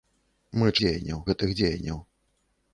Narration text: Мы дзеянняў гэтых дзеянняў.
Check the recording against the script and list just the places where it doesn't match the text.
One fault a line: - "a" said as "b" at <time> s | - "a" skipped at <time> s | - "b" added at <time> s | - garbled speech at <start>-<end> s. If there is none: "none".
none